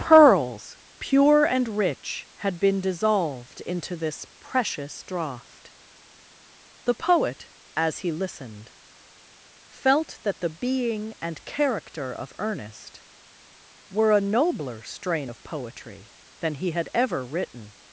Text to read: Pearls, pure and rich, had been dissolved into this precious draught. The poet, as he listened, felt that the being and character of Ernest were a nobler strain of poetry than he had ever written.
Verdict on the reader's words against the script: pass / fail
pass